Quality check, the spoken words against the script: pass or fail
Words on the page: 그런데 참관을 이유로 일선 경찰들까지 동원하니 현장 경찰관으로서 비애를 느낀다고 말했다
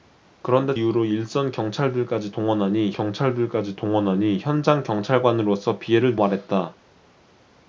fail